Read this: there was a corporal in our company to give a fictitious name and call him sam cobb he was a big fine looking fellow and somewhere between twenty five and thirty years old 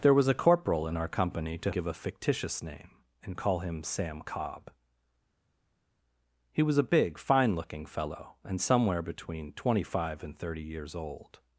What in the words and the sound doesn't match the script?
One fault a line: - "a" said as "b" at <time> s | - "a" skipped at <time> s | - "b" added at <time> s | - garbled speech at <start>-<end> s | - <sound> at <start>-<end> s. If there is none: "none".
none